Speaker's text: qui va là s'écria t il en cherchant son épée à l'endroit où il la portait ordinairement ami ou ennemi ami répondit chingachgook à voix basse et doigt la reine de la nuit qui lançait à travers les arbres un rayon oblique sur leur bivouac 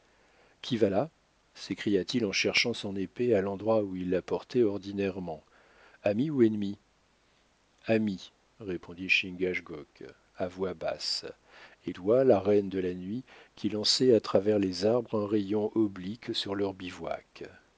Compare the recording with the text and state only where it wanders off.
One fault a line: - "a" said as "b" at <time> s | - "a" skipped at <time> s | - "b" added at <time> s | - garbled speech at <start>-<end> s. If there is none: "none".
none